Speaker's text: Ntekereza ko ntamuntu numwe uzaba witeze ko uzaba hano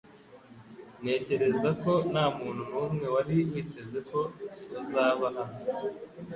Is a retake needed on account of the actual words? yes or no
yes